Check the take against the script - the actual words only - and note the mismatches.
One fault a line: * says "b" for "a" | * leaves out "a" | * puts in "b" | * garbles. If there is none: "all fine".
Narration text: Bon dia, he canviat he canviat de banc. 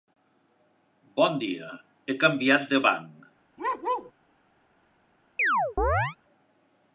* leaves out "he canviat"